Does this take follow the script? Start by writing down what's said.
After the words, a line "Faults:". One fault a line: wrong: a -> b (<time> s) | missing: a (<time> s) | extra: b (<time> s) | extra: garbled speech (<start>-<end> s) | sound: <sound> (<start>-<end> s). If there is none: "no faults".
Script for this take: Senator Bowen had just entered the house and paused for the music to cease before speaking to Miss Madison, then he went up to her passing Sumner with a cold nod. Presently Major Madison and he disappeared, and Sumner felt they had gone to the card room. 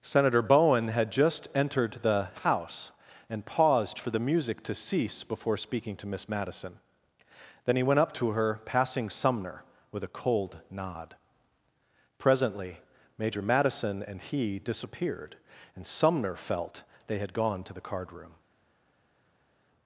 Senator Bowen had just entered the house and paused for the music to cease before speaking to Miss Madison, then he went up to her passing Sumner with a cold nod. Presently Major Madison and he disappeared, and Sumner felt they had gone to the card room.
Faults:
no faults